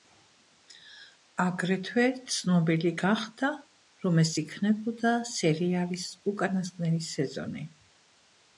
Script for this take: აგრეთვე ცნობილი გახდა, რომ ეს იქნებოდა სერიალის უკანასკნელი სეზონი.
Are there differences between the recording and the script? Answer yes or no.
no